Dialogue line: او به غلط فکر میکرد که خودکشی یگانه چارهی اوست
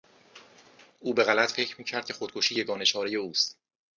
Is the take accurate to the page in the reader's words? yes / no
yes